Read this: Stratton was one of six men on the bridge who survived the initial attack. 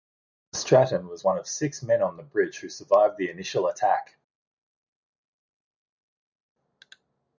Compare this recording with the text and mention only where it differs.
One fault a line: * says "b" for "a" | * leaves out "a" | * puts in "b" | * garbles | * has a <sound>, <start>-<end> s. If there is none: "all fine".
all fine